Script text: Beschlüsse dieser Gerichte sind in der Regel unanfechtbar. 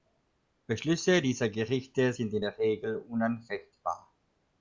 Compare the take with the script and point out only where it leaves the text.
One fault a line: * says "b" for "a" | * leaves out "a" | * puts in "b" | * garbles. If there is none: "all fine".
all fine